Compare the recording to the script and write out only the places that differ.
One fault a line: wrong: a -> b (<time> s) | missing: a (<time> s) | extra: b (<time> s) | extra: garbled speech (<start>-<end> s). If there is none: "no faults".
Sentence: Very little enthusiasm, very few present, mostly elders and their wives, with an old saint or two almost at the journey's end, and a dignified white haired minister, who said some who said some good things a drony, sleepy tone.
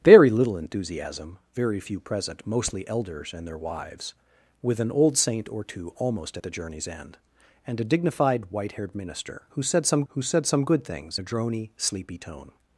no faults